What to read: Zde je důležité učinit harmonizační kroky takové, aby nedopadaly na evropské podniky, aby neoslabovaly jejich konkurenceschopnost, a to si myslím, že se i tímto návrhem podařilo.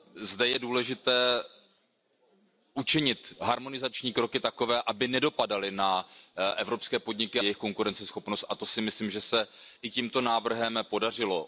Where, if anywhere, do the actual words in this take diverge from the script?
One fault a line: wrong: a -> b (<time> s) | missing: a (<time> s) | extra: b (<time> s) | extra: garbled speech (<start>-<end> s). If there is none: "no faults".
missing: aby neoslabovaly (7.4 s)